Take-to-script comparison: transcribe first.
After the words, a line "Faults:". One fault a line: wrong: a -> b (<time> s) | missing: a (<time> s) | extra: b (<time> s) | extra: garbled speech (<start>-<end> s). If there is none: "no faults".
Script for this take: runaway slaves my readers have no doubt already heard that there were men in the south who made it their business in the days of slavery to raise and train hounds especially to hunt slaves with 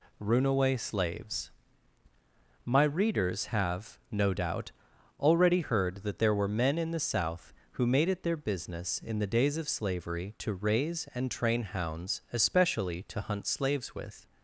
runaway slaves my readers have no doubt already heard that there were men in the south who made it their business in the days of slavery to raise and train hounds especially to hunt slaves with
Faults:
no faults